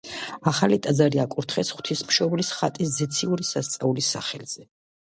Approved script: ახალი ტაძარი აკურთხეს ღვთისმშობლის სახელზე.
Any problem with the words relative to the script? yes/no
yes